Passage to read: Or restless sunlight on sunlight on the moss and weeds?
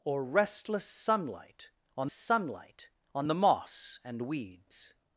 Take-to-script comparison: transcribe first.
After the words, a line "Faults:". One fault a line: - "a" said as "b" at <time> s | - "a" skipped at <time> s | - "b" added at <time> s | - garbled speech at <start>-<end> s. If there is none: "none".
Or restless sunlight on sunlight on the moss and weeds?
Faults:
none